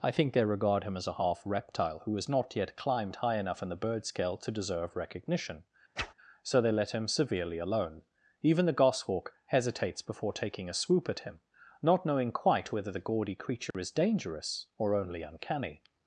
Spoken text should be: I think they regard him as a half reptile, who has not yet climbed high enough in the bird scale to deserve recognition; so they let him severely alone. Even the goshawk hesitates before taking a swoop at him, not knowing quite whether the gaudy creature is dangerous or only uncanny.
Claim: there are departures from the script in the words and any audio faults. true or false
true